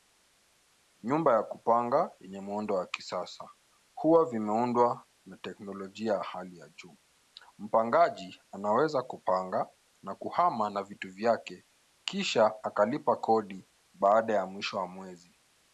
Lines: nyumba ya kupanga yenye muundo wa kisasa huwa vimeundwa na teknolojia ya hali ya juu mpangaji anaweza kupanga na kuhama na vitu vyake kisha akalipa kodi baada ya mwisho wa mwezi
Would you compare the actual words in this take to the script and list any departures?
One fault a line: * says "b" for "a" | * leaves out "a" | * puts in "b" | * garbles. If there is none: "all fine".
all fine